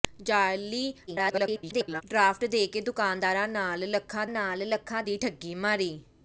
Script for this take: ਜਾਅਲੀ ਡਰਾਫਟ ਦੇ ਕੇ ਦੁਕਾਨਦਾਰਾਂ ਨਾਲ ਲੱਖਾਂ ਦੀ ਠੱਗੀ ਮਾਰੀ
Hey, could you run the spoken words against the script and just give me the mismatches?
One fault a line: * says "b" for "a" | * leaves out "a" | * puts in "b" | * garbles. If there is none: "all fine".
* garbles
* puts in "ਨਾਲ ਲੱਖਾਂ"